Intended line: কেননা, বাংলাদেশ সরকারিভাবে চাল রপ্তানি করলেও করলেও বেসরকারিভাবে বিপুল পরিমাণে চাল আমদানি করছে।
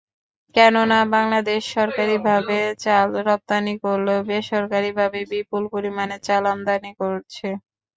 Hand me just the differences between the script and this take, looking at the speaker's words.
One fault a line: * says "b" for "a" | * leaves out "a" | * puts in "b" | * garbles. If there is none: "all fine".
* leaves out "করলেও"